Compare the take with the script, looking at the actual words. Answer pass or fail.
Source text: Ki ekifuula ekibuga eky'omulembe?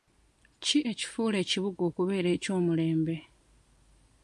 fail